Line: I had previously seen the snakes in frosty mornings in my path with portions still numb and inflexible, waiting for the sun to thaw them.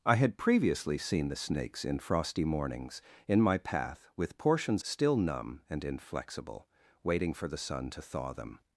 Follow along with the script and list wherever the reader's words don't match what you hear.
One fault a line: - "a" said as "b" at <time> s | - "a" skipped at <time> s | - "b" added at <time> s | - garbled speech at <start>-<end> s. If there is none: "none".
none